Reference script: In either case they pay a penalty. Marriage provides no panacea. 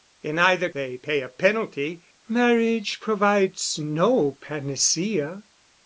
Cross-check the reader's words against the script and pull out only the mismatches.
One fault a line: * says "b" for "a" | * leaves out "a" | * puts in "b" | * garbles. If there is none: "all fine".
* leaves out "case"